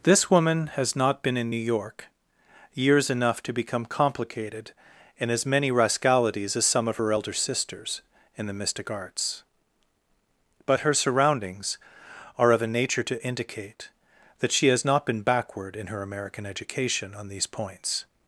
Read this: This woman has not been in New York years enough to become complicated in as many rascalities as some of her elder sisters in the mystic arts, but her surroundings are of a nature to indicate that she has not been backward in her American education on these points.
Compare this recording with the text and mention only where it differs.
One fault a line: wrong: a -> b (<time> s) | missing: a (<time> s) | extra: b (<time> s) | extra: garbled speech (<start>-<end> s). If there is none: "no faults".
no faults